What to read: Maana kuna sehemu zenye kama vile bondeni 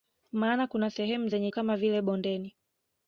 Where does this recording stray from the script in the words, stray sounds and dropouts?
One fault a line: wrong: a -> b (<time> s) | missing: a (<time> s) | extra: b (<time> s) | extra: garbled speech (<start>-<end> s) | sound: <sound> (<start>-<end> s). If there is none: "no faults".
no faults